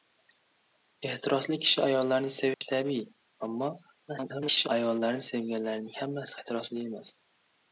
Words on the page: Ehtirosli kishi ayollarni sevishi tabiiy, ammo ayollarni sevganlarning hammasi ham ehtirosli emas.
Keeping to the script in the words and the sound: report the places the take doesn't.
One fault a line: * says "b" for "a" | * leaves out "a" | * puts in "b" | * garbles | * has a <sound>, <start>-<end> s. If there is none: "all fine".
* has a dropout, 2.5-2.6 s
* garbles
* leaves out "ham"